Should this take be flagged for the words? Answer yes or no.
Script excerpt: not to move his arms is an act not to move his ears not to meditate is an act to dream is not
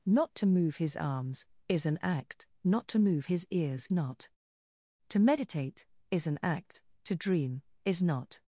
no